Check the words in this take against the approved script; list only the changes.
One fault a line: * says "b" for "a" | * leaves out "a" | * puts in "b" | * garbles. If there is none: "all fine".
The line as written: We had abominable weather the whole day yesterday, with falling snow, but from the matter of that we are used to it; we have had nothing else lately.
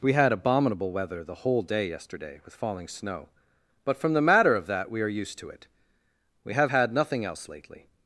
all fine